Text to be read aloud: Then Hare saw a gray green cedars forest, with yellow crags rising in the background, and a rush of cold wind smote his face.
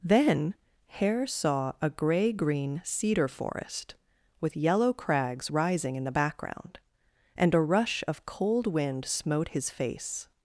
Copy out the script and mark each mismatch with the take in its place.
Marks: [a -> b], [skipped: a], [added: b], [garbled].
Then Hare saw a gray green [cedars -> cedar] forest, with yellow crags rising in the background, and a rush of cold wind smote his face.